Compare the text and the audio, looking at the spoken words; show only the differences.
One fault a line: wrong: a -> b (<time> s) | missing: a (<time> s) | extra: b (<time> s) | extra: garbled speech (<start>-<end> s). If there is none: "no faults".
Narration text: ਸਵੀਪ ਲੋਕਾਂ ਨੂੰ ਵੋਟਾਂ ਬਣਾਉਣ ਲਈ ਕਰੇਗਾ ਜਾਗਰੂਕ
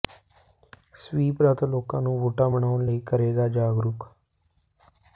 extra: ਰੱਥ (1.4 s)